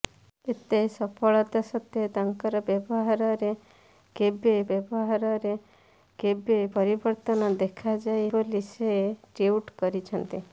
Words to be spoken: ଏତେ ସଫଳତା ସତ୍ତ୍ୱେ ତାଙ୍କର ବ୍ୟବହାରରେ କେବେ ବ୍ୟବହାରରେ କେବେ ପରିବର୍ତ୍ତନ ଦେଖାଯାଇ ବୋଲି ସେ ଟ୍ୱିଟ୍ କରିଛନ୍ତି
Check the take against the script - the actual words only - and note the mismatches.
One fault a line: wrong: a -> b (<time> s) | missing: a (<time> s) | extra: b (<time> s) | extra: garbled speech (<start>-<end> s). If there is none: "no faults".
no faults